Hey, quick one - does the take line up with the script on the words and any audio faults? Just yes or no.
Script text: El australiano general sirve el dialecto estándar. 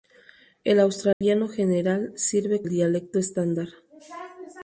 no